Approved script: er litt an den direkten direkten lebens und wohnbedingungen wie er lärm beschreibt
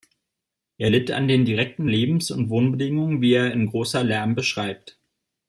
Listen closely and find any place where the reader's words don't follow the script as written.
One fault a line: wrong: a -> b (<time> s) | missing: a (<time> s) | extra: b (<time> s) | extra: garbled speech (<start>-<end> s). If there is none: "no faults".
missing: direkten (1.9 s)
extra: in großer (3.5 s)